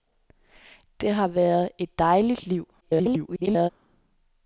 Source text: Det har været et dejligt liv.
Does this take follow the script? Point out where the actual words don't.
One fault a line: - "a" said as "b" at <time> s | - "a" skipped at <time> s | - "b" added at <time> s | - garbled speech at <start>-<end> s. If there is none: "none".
- garbled speech at 2.8-3.7 s